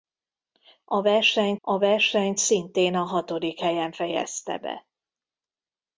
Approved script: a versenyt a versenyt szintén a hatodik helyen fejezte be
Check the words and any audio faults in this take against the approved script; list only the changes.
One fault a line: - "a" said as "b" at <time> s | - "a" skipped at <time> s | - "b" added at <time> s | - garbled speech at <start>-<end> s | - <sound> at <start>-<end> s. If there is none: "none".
none